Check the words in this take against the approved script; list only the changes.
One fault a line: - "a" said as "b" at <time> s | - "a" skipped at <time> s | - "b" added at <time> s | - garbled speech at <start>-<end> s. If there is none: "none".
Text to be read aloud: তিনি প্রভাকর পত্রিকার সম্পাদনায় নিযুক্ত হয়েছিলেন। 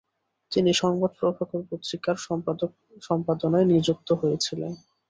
- "সংবাদ" added at 0.8 s